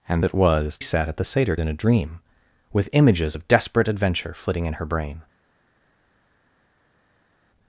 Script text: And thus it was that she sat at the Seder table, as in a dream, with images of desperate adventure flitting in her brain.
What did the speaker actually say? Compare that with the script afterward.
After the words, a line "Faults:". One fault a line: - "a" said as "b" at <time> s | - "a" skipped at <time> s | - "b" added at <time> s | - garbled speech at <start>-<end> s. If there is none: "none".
And it was sat at the Seder in a dream, with images of desperate adventure flitting in her brain.
Faults:
- "thus" skipped at 0.2 s
- "that she" skipped at 0.8 s
- "table as" skipped at 1.5 s